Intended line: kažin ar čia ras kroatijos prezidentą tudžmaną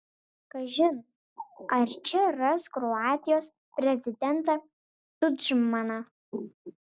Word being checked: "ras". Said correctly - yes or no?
yes